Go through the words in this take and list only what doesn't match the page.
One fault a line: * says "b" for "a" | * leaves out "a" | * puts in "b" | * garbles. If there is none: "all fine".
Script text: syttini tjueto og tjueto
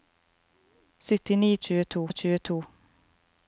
all fine